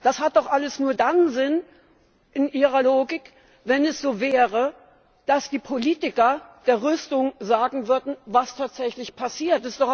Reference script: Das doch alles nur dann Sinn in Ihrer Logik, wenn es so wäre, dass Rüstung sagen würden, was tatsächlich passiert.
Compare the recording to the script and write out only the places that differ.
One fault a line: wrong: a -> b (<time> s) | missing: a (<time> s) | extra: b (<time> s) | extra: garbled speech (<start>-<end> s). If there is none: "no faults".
extra: hat (0.2 s)
extra: die Politiker der (5.5 s)